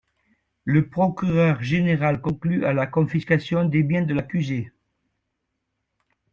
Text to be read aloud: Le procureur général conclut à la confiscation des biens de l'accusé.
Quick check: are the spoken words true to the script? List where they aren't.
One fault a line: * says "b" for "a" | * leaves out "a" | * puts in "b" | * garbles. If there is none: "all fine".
all fine